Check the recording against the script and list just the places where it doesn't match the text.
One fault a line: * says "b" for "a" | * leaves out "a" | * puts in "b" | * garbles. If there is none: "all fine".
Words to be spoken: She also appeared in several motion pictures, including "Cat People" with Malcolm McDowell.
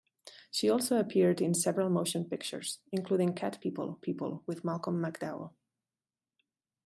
* puts in "People"